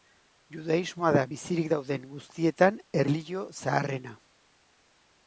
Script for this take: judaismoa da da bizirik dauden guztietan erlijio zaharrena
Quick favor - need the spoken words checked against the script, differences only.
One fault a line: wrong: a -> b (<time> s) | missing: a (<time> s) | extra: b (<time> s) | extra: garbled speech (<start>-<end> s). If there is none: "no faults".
missing: da (1.2 s)